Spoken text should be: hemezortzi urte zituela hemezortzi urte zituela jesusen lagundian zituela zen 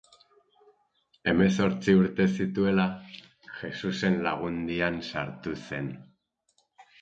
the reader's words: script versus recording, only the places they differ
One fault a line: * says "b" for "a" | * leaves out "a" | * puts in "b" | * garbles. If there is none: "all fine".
* leaves out "hemezortzi urte zituela"
* says "sartu" for "zituela"